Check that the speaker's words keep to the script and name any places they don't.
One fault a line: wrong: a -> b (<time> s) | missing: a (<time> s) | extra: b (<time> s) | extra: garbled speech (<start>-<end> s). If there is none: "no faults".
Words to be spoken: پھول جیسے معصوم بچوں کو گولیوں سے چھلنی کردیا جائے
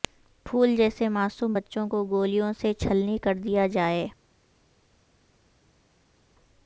no faults